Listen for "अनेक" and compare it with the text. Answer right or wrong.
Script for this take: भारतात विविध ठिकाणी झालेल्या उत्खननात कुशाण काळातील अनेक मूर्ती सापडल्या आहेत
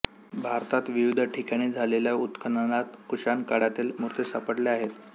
wrong